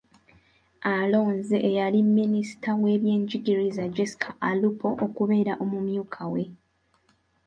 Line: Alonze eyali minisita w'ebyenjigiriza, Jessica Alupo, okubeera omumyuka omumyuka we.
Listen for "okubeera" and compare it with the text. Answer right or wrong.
right